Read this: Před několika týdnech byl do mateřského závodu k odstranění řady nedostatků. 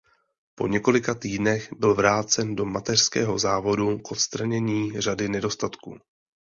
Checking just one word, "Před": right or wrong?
wrong